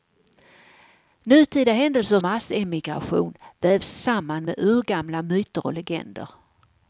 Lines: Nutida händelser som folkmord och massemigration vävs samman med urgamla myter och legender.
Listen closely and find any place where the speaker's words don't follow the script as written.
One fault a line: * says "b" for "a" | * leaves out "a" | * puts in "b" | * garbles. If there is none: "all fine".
* leaves out "som folkmord och"